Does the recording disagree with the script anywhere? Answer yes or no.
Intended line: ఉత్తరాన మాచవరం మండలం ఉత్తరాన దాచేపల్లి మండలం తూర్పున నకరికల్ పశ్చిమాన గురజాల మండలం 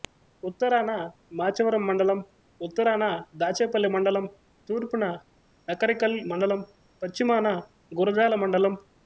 yes